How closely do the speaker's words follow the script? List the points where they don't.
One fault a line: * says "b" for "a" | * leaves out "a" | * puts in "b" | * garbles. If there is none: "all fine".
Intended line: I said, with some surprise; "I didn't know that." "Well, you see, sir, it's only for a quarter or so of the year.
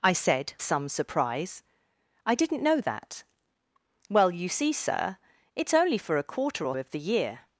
* leaves out "with"
* leaves out "so"